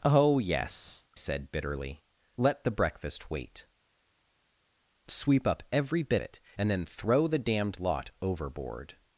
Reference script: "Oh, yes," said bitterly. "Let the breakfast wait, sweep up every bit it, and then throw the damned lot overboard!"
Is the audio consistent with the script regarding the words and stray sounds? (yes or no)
yes